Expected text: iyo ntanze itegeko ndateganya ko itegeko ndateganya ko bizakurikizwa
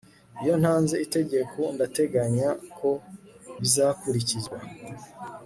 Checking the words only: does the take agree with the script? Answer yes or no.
no